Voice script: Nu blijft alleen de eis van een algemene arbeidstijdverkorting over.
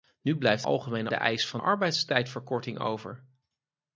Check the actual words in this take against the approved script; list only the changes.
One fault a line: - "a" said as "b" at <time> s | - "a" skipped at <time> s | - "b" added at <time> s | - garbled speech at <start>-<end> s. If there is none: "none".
- "alleen" said as "algemene" at 0.6 s
- "een algemene" skipped at 1.6 s